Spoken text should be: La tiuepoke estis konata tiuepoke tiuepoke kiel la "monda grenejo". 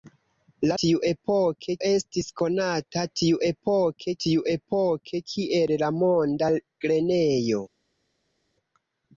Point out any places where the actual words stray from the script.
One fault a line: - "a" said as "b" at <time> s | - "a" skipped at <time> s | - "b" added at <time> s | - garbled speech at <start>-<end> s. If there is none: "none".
none